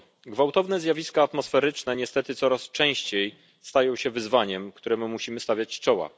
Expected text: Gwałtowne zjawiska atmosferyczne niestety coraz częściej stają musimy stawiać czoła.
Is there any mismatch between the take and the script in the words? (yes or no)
yes